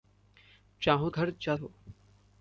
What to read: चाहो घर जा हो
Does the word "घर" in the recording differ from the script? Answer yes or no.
no